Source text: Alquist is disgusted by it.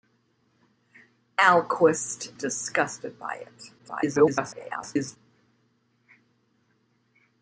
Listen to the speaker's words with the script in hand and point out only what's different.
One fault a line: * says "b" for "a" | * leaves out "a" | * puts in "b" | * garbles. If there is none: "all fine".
* leaves out "is"
* garbles